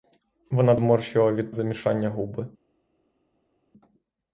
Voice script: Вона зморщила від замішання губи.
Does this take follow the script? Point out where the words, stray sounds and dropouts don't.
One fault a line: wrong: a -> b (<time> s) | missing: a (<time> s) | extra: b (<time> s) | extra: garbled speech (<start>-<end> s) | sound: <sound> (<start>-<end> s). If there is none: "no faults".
no faults